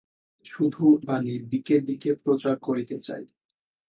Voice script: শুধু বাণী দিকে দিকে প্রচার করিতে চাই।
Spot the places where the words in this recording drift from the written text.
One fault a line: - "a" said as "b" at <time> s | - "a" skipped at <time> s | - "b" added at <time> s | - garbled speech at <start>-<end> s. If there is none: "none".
none